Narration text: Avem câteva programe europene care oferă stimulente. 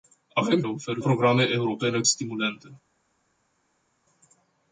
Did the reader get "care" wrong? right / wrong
wrong